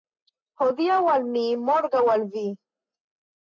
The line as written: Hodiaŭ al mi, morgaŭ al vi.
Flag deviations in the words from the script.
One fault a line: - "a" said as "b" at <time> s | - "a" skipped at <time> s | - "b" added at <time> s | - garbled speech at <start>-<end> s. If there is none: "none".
none